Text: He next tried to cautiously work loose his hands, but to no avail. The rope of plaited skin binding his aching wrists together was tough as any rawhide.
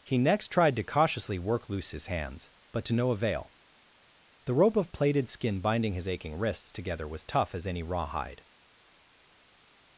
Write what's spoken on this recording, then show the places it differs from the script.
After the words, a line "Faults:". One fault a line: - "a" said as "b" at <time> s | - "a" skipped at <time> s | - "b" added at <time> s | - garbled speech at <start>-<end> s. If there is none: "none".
He next tried to cautiously work loose his hands, but to no avail. The rope of plaited skin binding his aching wrists together was tough as any rawhide.
Faults:
none